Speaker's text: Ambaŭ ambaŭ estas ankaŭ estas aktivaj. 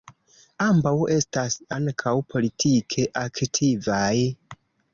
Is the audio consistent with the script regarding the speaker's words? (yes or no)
no